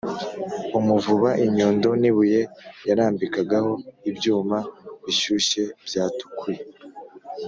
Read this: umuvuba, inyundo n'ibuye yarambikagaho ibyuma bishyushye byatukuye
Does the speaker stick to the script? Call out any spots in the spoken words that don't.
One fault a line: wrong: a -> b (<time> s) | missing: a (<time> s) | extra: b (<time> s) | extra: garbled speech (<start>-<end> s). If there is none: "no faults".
no faults